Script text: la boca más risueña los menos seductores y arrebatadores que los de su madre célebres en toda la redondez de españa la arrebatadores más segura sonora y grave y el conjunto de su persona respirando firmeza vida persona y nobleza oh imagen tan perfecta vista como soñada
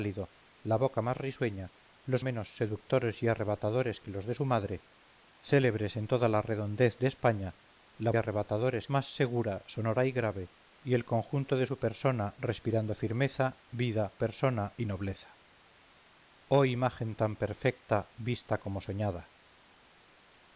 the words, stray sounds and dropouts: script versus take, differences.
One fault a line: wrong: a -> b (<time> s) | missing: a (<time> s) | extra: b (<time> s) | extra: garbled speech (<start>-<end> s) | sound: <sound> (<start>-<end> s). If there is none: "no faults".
no faults